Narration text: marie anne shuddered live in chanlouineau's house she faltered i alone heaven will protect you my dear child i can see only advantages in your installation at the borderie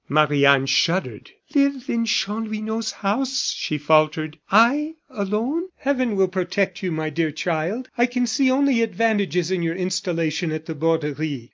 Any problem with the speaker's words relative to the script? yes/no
no